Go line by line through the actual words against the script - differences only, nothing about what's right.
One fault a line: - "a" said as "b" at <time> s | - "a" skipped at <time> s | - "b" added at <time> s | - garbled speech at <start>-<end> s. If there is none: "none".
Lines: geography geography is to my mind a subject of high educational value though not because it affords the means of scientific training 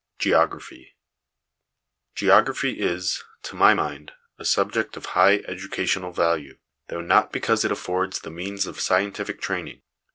none